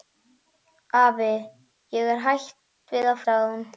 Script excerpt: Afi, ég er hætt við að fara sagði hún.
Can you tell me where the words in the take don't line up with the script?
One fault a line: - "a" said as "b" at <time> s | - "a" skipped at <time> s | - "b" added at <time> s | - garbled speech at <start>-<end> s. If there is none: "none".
- "fara" skipped at 3.2 s